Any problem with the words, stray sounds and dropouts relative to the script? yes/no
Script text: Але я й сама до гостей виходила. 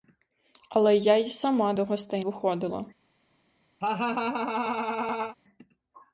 yes